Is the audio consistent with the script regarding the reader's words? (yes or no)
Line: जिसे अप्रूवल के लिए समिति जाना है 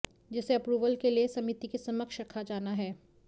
no